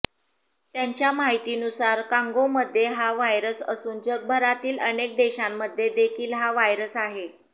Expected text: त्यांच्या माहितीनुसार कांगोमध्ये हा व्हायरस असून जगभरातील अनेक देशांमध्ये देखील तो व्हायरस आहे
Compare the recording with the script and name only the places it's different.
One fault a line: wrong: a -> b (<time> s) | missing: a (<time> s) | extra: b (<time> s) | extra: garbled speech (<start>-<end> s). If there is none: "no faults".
wrong: तो -> हा (6.3 s)